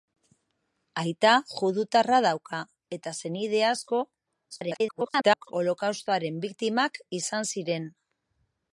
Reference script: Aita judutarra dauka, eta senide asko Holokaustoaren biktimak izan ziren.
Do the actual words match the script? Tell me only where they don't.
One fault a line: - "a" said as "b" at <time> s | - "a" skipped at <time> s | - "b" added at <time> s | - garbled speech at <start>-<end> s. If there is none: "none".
- garbled speech at 4.5-5.5 s